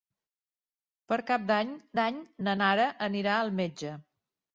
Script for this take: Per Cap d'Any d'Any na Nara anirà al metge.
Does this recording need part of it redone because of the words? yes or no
no